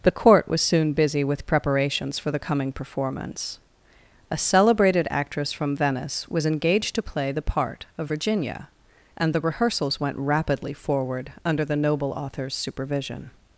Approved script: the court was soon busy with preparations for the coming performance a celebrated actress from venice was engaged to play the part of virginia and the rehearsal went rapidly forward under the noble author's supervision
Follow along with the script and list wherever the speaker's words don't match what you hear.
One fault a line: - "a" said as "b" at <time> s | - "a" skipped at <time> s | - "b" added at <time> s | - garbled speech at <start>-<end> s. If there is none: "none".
- "rehearsal" said as "rehearsals" at 9.4 s